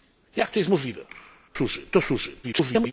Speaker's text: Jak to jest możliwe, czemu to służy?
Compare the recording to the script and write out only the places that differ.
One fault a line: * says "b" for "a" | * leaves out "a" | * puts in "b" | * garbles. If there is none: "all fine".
* says "służy" for "czemu"
* garbles